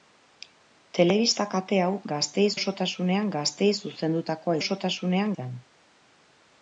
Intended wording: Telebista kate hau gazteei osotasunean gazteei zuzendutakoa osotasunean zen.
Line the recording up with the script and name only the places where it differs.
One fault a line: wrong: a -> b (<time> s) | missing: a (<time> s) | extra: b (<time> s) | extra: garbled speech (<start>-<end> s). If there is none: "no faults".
no faults